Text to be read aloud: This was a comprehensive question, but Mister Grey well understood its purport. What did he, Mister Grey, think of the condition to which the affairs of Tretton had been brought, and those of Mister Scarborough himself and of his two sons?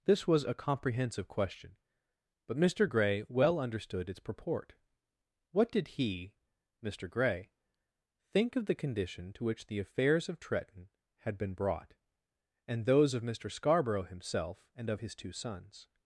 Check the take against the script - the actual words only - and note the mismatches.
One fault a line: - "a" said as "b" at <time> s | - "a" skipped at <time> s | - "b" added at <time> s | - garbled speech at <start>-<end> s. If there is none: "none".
none